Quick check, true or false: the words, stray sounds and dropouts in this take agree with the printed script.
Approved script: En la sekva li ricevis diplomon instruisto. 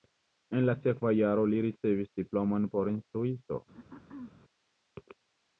false